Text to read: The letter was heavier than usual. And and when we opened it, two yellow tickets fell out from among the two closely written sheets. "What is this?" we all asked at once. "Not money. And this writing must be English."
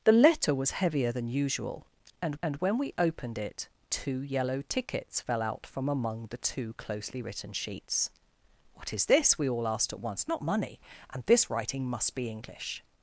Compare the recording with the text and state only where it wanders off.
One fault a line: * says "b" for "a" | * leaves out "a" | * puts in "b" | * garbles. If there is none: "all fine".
all fine